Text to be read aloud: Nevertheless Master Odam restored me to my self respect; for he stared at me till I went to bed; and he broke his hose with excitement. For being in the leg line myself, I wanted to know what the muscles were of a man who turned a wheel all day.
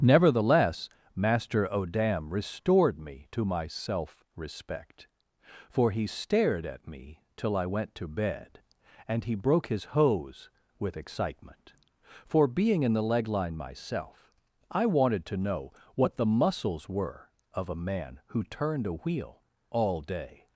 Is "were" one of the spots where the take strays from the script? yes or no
no